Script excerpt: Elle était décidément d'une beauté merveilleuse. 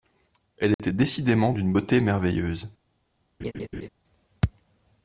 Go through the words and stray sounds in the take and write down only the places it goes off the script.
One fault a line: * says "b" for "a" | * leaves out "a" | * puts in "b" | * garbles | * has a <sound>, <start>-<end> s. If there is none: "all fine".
* has a dropout, 0.7-0.8 s
* has a laugh, 3.4-3.9 s